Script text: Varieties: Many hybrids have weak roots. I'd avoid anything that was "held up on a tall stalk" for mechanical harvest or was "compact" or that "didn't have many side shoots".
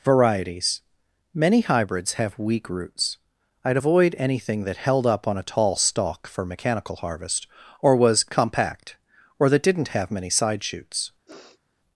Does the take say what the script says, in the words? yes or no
no